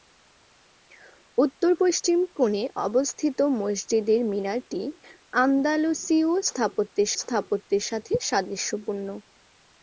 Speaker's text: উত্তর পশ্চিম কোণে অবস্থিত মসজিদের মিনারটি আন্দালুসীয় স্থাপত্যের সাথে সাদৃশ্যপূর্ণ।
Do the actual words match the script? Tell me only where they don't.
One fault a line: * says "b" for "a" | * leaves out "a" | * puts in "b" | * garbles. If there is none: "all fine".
* puts in "স্থাপত্যের"